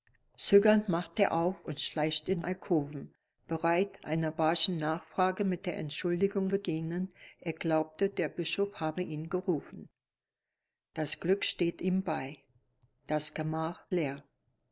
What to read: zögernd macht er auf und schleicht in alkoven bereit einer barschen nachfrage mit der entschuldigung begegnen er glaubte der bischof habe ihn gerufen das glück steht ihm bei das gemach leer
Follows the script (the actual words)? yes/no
yes